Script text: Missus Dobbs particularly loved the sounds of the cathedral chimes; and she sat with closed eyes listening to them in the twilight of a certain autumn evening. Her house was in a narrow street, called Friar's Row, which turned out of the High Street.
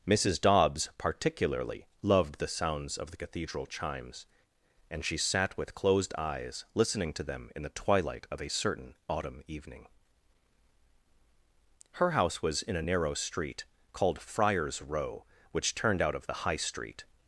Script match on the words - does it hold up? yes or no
yes